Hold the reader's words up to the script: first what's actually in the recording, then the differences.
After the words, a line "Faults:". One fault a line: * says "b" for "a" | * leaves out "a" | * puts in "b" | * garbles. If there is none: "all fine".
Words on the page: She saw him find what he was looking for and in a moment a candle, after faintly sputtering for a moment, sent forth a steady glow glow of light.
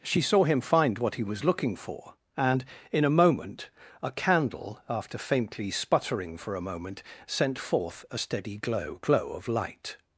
She saw him find what he was looking for and in a moment a candle, after faintly sputtering for a moment, sent forth a steady glow glow of light.
Faults:
all fine